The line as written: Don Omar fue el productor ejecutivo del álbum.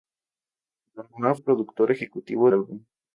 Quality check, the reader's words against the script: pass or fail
fail